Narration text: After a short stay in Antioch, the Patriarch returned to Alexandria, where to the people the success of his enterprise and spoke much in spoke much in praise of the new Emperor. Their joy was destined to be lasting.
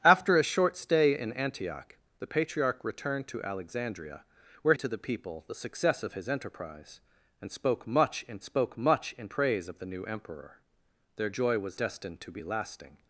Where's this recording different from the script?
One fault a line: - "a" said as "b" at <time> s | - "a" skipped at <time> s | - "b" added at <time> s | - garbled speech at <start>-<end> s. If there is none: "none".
none